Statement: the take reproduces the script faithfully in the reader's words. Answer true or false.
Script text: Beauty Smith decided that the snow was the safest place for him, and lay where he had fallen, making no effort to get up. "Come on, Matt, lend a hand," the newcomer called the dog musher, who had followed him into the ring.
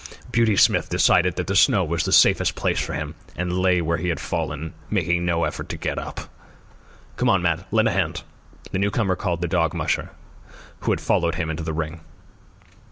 true